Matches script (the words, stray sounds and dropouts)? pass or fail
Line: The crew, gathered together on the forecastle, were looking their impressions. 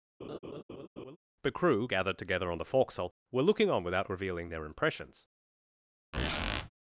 fail